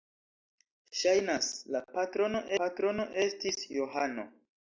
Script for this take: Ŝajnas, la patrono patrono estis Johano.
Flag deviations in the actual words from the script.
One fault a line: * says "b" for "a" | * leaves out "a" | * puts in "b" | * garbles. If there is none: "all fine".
all fine